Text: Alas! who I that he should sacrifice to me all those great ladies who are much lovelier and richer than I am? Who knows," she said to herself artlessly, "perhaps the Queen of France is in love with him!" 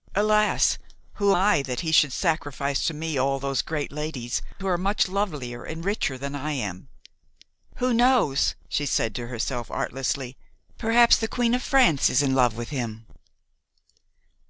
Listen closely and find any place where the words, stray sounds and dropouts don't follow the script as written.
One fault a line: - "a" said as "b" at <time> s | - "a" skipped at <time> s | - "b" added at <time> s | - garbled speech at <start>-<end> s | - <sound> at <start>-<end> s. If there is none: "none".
none